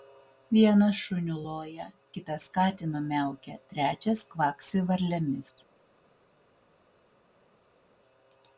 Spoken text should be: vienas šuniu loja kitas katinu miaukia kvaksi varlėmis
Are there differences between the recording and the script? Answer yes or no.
yes